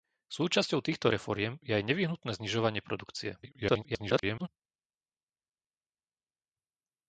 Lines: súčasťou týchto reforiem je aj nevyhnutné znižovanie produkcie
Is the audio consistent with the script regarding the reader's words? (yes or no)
no